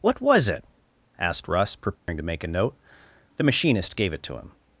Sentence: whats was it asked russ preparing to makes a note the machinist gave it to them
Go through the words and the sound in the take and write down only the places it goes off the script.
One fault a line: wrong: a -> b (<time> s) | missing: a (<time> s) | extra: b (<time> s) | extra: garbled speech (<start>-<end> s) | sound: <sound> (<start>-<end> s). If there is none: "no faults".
wrong: whats -> what (0.0 s)
sound: dropout (2.0-2.1 s)
wrong: makes -> make (2.2 s)
wrong: them -> him (4.4 s)